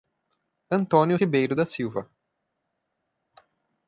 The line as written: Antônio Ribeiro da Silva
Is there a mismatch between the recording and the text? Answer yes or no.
no